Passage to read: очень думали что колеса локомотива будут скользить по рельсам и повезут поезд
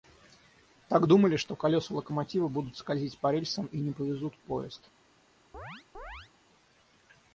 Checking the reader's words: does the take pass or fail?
fail